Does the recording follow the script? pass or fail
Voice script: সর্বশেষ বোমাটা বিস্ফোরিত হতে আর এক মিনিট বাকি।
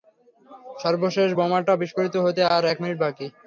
pass